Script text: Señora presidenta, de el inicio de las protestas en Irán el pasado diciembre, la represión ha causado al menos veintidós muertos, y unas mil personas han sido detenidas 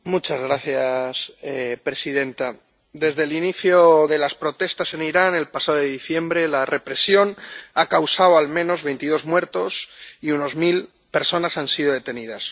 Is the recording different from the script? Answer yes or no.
yes